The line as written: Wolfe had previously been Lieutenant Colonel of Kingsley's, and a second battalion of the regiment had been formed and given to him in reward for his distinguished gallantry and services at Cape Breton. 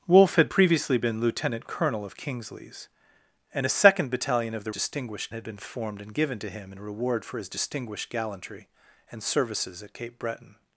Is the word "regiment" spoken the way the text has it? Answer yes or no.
no